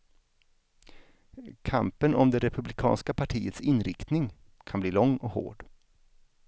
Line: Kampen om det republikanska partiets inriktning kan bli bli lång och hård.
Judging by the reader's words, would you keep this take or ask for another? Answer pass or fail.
fail